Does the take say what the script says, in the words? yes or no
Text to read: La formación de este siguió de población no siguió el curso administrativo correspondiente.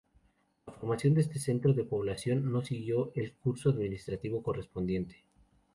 no